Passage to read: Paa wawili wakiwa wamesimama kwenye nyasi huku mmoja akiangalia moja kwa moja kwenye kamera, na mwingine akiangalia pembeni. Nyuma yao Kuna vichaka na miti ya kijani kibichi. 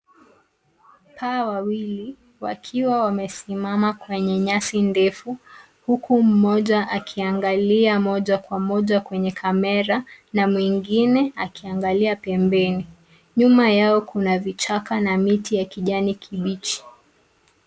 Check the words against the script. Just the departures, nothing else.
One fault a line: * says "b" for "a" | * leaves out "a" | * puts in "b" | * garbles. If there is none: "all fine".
* puts in "ndefu"